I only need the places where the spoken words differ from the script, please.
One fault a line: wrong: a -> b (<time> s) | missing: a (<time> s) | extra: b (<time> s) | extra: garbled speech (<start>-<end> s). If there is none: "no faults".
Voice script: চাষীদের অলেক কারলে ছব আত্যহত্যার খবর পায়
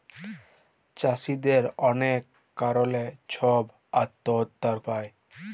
missing: খবর (4.8 s)